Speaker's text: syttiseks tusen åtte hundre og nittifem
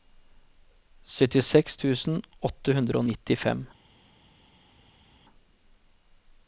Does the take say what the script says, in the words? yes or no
yes